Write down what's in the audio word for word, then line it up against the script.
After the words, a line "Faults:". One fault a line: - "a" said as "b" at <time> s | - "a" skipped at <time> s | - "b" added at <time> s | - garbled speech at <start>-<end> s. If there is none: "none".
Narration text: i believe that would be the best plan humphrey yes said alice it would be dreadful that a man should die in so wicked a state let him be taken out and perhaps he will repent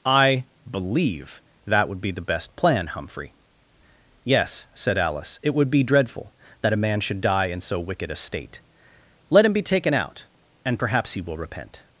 i believe that would be the best plan humphrey yes said alice it would be dreadful that a man should die in so wicked a state let him be taken out and perhaps he will repent
Faults:
none